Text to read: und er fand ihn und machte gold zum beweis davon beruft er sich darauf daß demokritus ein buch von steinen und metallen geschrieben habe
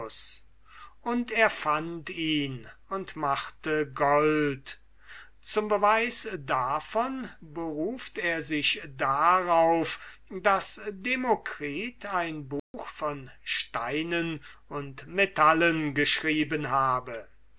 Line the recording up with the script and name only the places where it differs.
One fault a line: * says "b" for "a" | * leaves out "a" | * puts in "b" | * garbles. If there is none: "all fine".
all fine